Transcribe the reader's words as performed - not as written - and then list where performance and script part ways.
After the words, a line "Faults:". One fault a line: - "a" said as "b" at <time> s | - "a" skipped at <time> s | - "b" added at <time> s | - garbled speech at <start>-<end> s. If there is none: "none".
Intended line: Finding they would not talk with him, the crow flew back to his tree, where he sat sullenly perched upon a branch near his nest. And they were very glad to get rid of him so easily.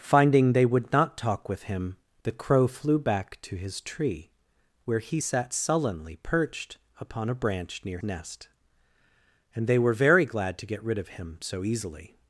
Finding they would not talk with him, the crow flew back to his tree, where he sat sullenly perched upon a branch near nest. And they were very glad to get rid of him so easily.
Faults:
- "his" skipped at 8.0 s